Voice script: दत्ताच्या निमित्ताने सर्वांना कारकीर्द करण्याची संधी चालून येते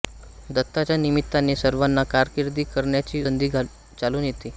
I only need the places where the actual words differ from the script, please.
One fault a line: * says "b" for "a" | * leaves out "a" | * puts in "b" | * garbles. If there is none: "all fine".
all fine